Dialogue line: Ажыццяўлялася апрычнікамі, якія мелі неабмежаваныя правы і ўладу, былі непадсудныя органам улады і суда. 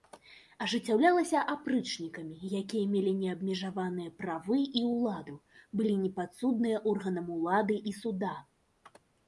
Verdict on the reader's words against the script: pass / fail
pass